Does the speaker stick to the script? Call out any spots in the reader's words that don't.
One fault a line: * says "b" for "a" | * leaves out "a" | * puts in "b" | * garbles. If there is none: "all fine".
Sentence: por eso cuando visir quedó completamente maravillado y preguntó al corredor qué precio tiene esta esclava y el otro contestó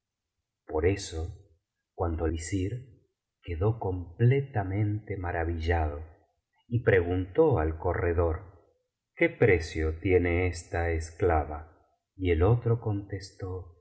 all fine